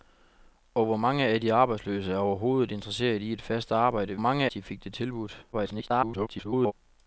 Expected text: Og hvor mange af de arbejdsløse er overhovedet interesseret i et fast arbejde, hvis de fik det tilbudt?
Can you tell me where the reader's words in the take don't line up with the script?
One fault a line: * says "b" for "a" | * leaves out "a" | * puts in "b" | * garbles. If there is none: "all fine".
* says "mange" for "hvis"
* garbles